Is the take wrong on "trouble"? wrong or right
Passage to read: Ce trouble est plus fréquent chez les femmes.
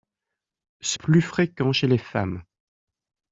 wrong